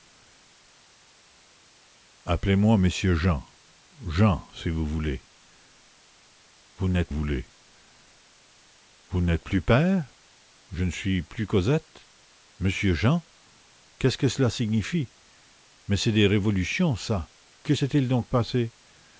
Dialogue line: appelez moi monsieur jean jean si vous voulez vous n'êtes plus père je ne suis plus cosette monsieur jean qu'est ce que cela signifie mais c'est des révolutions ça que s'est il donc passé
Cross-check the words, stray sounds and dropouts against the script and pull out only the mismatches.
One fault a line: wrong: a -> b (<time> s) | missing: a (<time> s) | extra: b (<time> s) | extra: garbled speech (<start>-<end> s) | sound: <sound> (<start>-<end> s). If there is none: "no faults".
extra: voulez vous n'êtes (7.1 s)